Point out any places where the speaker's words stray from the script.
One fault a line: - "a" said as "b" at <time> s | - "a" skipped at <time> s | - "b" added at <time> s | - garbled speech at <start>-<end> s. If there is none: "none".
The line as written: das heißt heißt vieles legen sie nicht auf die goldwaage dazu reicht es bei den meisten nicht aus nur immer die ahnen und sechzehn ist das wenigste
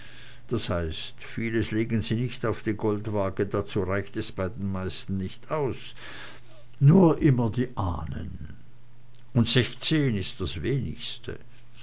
- "heißt" skipped at 1.2 s